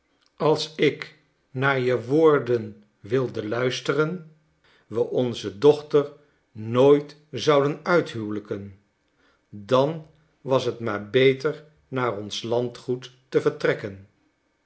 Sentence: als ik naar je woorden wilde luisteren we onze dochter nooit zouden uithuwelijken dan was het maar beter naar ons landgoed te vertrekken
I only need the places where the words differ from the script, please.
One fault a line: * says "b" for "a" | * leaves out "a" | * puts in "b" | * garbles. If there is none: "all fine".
all fine